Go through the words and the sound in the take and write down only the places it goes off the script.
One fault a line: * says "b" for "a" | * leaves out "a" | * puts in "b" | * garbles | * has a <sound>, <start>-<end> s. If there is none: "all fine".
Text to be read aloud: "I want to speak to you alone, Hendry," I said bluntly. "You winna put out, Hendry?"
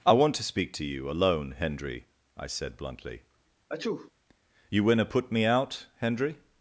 * has a sneeze, 3.7-4.1 s
* puts in "me"